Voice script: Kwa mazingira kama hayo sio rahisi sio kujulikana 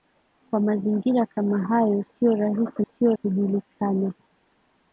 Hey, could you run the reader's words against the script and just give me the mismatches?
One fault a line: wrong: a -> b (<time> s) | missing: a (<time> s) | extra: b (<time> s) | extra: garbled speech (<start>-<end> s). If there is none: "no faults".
no faults